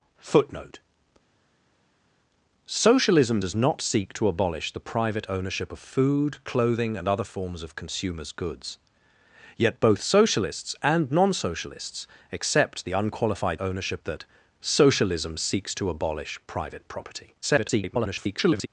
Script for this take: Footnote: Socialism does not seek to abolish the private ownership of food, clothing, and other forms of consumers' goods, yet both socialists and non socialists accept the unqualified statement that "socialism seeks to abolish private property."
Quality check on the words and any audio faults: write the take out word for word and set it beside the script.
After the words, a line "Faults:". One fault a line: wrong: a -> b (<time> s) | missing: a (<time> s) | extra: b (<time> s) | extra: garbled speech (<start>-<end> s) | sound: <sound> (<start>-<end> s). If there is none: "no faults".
Footnote: Socialism does not seek to abolish the private ownership of food, clothing, and other forms of consumers' goods, yet both socialists and non socialists accept the unqualified ownership that "socialism seeks to abolish private property." [garbled]
Faults:
wrong: statement -> ownership (13.6 s)
extra: garbled speech (17.4-18.7 s)